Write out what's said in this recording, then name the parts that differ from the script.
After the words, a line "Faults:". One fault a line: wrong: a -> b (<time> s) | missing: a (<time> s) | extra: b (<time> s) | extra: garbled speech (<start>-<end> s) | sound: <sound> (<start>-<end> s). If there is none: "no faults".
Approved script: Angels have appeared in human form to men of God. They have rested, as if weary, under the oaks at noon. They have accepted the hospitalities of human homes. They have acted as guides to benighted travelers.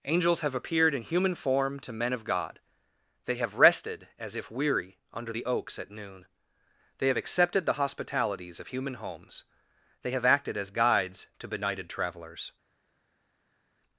Angels have appeared in human form to men of God. They have rested, as if weary, under the oaks at noon. They have accepted the hospitalities of human homes. They have acted as guides to benighted travelers.
Faults:
no faults